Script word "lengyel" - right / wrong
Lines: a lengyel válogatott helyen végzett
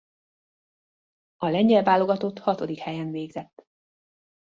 right